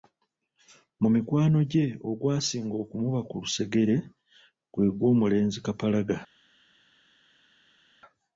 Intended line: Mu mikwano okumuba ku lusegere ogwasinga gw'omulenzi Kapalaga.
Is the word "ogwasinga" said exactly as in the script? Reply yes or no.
no